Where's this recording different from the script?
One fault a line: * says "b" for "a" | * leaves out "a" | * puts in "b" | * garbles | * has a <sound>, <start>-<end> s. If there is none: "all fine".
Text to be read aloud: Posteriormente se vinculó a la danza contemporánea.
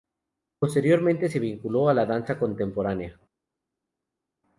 all fine